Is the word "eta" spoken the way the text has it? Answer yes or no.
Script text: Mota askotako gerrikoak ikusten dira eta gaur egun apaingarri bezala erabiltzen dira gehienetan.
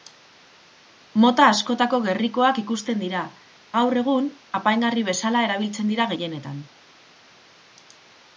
no